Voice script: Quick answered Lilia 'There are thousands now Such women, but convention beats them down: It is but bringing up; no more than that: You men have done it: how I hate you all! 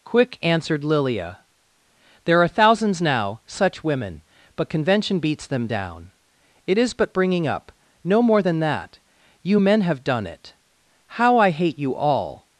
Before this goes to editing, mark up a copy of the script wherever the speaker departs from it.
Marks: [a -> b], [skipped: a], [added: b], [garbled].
Quick answered Lilia 'There are thousands now Such women, but convention beats them down: It is but bringing up; no more than that: You men have done it: how I hate you all!